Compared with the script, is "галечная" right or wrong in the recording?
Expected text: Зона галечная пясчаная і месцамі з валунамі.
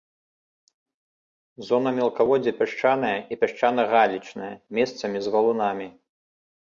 wrong